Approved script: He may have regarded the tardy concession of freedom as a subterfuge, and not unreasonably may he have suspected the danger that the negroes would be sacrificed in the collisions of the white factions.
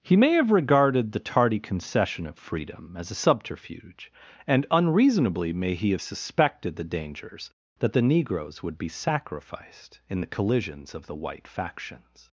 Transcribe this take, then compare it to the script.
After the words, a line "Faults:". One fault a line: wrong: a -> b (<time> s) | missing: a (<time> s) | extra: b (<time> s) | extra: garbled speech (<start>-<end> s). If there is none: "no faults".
He may have regarded the tardy concession of freedom as a subterfuge, and unreasonably may he have suspected the dangers that the negroes would be sacrificed in the collisions of the white factions.
Faults:
missing: not (4.7 s)
wrong: danger -> dangers (6.8 s)